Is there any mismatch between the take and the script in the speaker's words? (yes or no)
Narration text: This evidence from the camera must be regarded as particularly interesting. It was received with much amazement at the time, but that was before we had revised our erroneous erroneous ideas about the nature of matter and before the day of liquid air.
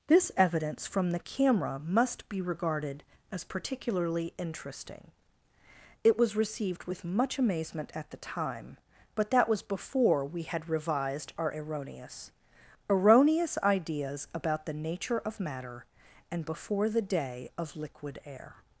no